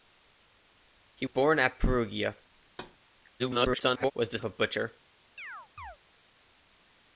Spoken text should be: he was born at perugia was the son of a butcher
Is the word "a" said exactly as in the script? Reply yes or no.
yes